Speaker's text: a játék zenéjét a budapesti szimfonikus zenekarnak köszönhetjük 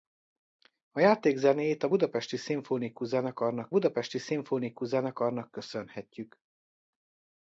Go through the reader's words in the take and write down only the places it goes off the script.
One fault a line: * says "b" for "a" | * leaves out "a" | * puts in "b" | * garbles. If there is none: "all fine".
* puts in "budapesti szimfonikus zenekarnak"